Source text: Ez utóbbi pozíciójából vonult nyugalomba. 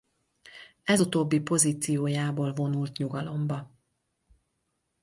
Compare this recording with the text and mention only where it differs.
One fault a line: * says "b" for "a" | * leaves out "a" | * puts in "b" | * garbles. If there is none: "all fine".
all fine